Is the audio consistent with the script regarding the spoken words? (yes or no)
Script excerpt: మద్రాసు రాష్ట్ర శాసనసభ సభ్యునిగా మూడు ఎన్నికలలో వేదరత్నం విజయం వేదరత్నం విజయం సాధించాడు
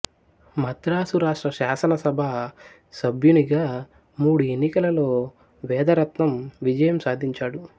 no